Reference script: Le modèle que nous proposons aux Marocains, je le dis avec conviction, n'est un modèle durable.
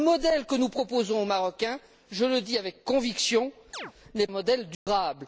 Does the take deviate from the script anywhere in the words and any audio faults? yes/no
yes